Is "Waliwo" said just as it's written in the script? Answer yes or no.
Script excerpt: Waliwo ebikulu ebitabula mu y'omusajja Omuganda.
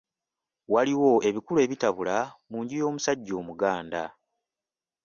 yes